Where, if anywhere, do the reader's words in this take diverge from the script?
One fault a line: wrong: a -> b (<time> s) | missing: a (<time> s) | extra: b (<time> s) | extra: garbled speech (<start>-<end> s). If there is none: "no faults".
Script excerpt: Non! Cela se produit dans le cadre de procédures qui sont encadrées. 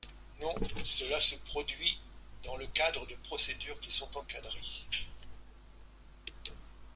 no faults